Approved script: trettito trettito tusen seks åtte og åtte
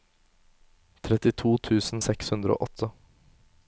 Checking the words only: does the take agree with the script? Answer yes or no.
no